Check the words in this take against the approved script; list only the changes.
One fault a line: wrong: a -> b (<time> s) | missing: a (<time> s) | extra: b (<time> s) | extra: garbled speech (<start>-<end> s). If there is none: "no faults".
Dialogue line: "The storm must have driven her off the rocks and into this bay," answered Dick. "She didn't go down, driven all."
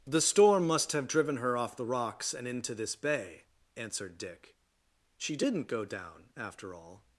wrong: driven -> after (6.4 s)